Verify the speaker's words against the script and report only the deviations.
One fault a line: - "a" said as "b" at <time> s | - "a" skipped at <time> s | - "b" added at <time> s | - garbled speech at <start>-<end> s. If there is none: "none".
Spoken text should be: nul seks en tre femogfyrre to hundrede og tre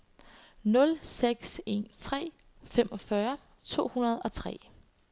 none